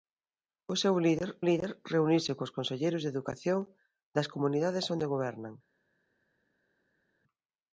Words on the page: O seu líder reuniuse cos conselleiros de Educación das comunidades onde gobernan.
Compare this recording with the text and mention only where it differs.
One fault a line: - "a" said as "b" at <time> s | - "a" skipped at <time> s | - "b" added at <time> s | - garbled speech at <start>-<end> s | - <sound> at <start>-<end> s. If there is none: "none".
- "líder" added at 1.5 s